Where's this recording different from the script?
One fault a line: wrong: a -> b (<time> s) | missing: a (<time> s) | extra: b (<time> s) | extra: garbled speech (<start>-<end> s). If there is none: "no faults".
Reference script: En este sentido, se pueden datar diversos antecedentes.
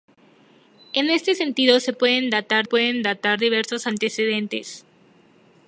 extra: pueden datar (2.6 s)